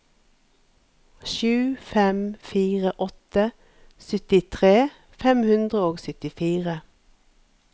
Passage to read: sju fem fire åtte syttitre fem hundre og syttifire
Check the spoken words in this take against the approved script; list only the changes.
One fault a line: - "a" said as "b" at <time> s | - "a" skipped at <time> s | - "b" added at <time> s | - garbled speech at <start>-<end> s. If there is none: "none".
none